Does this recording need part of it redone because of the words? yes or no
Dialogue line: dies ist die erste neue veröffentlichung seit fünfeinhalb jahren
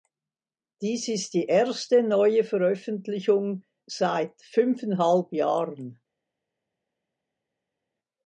no